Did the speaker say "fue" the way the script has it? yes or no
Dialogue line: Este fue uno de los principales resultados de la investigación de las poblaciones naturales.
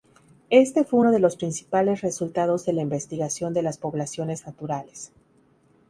yes